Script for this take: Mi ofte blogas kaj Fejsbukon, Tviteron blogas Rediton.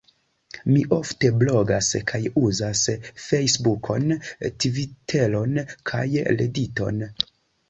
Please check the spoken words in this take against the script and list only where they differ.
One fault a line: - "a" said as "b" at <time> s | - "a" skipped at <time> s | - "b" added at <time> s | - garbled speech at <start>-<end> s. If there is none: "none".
- "uzas" added at 2.4 s
- "blogas" said as "kaj" at 5.9 s